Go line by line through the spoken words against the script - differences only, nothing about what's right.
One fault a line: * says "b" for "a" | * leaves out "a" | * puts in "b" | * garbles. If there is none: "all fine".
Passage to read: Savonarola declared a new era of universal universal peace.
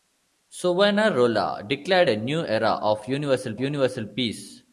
all fine